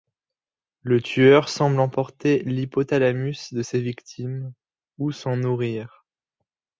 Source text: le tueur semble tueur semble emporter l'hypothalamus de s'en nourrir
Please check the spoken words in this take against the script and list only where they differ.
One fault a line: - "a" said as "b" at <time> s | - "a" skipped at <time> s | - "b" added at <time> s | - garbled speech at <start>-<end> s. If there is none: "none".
- "tueur semble" skipped at 1.8 s
- "ses victimes ou" added at 3.6 s